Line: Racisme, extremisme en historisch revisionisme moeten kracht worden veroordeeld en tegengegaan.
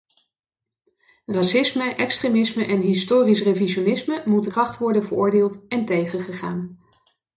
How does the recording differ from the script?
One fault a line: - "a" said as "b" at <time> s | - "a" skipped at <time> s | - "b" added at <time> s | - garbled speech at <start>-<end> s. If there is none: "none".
none